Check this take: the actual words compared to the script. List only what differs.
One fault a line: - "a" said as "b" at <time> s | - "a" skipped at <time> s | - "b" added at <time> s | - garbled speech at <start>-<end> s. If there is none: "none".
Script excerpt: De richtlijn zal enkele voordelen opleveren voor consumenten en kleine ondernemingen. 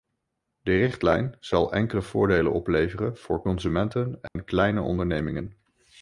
none